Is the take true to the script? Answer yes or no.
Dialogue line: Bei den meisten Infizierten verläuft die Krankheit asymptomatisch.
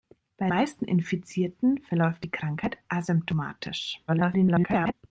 no